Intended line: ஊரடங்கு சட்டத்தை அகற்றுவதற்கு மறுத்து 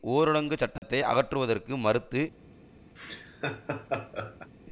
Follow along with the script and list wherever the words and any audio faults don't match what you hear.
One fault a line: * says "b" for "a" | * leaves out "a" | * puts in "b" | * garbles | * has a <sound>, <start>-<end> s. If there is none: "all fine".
* has a dropout, 0.8-0.8 s
* has a laugh, 3.0-4.5 s